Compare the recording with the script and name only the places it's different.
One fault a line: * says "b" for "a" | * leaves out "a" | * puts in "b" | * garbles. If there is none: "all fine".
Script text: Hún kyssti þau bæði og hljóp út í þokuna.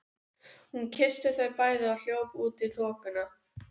all fine